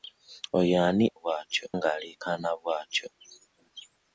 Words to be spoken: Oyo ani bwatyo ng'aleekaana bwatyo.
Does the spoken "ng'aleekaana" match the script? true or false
true